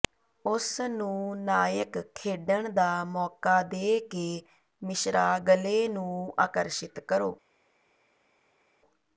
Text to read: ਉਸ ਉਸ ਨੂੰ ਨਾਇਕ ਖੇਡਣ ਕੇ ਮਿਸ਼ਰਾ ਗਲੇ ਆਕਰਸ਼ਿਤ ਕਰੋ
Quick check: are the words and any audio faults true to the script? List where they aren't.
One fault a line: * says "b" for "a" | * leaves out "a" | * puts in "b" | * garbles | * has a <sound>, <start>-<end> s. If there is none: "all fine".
* leaves out "ਉਸ"
* puts in "ਦਾ ਮੌਕਾ ਦੇ"
* puts in "ਨੂੰ"